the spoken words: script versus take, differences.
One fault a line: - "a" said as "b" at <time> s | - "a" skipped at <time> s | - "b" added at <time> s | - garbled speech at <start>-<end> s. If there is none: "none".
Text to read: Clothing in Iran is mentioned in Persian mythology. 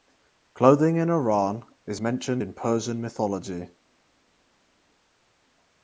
none